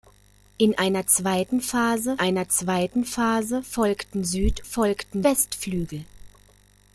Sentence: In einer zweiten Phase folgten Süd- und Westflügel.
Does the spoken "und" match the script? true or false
false